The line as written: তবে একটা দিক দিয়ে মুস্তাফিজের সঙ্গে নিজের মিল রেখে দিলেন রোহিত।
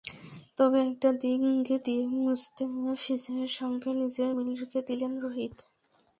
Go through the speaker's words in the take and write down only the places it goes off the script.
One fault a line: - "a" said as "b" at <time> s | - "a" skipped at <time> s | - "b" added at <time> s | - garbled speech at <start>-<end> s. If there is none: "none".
none